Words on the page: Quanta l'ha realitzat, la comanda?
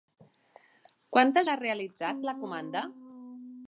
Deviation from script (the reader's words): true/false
false